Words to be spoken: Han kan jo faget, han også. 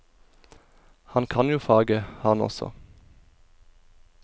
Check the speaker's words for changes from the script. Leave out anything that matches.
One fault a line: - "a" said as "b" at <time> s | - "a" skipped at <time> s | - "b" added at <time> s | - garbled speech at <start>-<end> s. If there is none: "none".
none